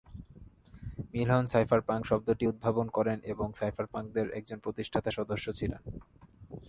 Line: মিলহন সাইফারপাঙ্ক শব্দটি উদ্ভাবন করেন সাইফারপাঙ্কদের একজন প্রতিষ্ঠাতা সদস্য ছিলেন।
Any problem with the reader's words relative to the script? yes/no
yes